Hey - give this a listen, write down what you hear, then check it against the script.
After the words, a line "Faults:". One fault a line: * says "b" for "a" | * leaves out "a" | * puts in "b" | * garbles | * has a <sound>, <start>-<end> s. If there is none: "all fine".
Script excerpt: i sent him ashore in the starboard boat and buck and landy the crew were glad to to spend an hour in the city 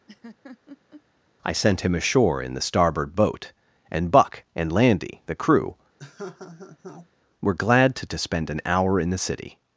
i sent him ashore in the starboard boat and buck and landy the crew were glad to to spend an hour in the city
Faults:
* has a laugh, 0.1-1.0 s
* has a laugh, 6.0-7.1 s